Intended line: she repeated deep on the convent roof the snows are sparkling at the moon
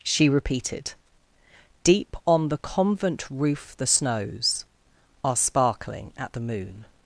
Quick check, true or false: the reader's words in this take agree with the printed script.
true